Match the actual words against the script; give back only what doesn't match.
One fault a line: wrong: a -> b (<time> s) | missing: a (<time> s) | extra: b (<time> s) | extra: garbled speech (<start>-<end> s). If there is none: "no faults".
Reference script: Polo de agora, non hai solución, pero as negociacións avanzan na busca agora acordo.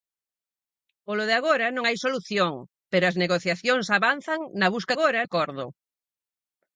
no faults